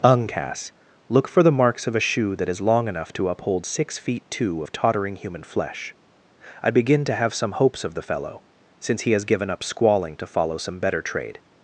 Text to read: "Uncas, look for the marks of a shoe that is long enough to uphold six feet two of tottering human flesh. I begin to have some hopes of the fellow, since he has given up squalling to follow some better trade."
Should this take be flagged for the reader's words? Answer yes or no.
no